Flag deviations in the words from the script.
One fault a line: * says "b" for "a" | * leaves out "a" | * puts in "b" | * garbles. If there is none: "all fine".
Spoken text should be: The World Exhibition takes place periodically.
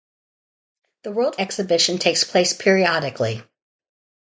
all fine